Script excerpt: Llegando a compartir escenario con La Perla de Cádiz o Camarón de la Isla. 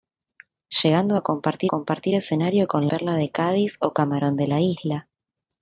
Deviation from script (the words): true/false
true